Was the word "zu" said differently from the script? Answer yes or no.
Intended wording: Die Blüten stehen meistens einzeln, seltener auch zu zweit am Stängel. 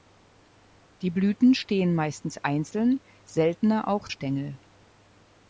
yes